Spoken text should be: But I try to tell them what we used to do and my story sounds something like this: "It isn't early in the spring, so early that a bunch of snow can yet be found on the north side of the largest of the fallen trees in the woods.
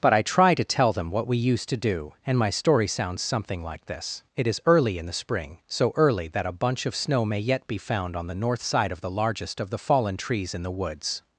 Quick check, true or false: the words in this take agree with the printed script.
false